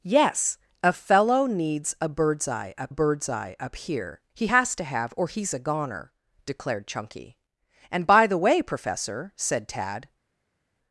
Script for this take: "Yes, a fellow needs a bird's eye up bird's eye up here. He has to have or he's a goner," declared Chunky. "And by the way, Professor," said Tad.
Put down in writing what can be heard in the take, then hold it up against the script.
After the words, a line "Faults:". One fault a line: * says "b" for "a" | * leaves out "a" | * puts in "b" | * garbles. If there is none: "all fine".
"Yes, a fellow needs a bird's eye up bird's eye up here. He has to have or he's a goner," declared Chunky. "And by the way, Professor," said Tad.
Faults:
all fine